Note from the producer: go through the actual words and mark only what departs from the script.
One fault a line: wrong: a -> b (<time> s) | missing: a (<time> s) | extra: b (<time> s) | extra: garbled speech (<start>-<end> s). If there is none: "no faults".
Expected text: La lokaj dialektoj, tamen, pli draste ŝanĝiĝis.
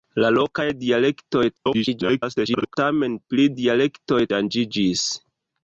extra: garbled speech (1.6-2.7 s)
wrong: draste -> dialektoj (3.6 s)